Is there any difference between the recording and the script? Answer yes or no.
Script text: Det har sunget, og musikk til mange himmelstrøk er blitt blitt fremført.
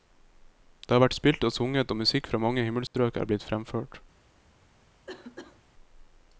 yes